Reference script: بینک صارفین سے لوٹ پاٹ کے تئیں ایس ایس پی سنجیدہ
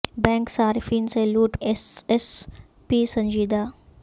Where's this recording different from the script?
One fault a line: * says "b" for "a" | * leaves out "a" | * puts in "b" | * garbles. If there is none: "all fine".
* leaves out "پاٹ کے تئیں"